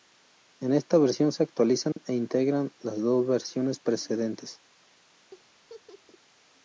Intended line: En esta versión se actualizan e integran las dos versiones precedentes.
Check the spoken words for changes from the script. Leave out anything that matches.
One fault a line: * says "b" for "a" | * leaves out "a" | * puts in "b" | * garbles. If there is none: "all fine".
all fine